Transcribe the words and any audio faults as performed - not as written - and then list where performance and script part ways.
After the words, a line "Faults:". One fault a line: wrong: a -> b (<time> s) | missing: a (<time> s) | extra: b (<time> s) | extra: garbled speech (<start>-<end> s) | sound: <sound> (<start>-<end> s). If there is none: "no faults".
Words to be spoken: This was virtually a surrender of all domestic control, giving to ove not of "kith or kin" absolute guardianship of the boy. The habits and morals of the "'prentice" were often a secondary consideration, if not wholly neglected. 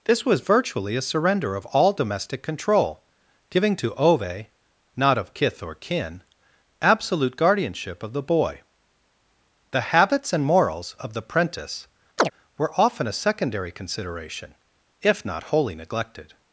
This was virtually a surrender of all domestic control, giving to ove not of "kith or kin" absolute guardianship of the boy. The habits and morals of the "'prentice" were often a secondary consideration, if not wholly neglected.
Faults:
sound: chirp (12.2-12.3 s)